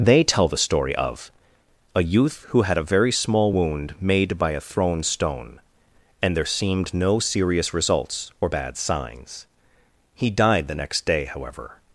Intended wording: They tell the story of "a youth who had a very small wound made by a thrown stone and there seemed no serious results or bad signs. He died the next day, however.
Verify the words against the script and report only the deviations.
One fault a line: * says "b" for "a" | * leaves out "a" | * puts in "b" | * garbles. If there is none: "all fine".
all fine